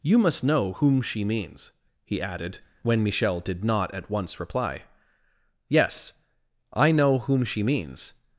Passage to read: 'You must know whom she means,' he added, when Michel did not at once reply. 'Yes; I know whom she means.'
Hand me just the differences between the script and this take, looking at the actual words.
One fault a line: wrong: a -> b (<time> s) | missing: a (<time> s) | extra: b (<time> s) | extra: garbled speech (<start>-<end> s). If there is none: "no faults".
no faults